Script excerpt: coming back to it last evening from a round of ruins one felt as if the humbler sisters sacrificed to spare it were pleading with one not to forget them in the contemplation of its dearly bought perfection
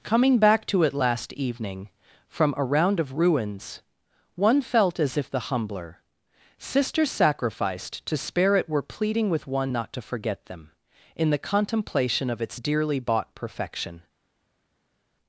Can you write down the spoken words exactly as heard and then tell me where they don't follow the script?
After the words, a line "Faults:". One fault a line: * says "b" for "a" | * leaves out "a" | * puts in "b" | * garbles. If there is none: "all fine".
coming back to it last evening from a round of ruins one felt as if the humbler sisters sacrificed to spare it were pleading with one not to forget them in the contemplation of its dearly bought perfection
Faults:
all fine